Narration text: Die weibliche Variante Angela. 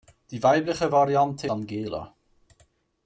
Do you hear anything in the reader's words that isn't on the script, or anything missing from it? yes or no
no